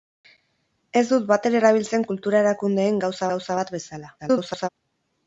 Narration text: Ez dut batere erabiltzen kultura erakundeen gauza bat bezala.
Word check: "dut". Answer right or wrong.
right